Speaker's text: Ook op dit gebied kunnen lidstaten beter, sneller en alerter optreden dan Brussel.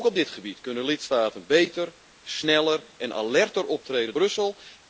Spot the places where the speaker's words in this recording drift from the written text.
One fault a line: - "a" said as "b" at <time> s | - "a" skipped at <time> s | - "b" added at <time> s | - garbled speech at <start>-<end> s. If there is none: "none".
- "dan" skipped at 4.1 s